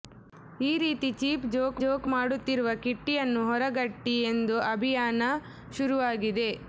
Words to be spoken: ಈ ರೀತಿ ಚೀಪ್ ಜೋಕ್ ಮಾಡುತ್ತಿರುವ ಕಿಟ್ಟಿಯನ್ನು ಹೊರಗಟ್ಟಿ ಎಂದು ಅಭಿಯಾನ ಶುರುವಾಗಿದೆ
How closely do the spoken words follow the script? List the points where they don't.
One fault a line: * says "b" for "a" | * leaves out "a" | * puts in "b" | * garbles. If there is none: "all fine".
* puts in "ಜೋಕ್"